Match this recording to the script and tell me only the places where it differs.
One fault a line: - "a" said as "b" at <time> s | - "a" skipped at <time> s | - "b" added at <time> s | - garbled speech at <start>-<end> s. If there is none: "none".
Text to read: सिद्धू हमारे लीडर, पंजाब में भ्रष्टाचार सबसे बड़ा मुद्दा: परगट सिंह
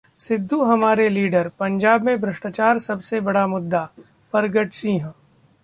none